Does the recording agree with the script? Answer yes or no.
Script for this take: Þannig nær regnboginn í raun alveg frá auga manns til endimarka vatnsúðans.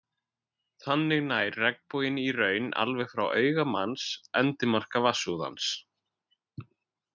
no